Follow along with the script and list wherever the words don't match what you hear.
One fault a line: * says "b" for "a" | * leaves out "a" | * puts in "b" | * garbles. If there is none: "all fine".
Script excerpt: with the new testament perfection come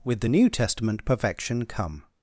all fine